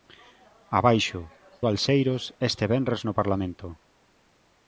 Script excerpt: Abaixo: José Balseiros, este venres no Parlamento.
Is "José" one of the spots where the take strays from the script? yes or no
yes